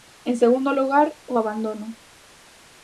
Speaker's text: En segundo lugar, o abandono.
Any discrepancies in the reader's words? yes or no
no